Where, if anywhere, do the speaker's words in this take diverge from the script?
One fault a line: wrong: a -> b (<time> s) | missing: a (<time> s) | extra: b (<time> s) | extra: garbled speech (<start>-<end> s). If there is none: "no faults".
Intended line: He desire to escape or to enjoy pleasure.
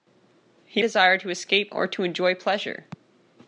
no faults